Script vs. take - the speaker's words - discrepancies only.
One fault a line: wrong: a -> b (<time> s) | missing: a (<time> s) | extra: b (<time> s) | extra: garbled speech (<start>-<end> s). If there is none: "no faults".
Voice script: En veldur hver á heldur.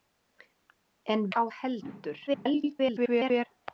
missing: veldur hver (1.2 s)
extra: garbled speech (2.3-3.5 s)